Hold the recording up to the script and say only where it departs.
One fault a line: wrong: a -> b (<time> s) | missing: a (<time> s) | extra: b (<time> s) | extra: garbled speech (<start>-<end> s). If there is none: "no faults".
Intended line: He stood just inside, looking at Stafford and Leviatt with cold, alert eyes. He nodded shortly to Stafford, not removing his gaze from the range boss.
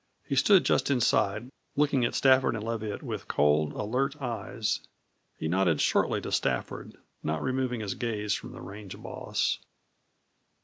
no faults